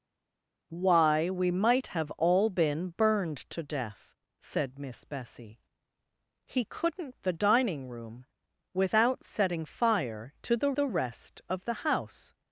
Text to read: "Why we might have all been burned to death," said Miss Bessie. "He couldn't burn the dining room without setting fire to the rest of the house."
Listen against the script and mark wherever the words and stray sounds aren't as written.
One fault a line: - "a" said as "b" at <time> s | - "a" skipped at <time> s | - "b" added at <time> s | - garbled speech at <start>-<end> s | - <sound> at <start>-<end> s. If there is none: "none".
- "burn" skipped at 7.2 s
- "the" added at 10.7 s